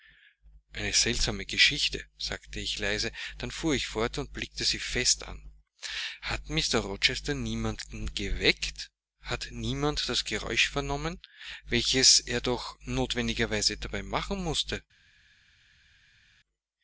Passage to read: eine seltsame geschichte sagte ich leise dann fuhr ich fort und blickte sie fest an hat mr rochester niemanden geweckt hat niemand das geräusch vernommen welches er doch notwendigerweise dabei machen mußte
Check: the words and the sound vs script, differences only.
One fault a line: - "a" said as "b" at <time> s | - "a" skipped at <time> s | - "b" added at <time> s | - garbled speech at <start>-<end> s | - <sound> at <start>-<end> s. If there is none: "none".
none